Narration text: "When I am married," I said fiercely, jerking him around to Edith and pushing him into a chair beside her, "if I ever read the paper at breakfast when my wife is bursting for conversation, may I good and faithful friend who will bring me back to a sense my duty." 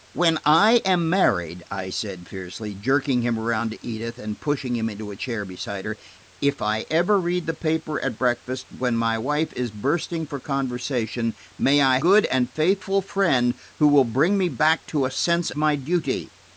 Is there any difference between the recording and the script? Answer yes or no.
no